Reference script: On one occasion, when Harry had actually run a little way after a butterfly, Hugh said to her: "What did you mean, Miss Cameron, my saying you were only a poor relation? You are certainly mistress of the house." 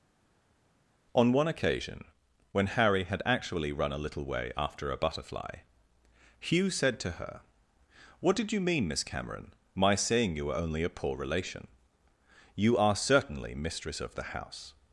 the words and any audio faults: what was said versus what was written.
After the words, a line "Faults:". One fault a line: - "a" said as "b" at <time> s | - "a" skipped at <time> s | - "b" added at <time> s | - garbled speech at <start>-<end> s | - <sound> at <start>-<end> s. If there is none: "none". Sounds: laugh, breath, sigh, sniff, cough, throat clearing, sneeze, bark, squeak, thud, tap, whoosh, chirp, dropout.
On one occasion, when Harry had actually run a little way after a butterfly, Hugh said to her: "What did you mean, Miss Cameron, my saying you were only a poor relation? You are certainly mistress of the house."
Faults:
none